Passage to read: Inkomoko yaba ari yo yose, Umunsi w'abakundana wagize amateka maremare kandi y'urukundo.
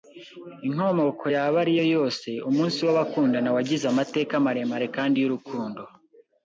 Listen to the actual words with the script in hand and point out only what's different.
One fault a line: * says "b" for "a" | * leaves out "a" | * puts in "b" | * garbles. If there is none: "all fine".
all fine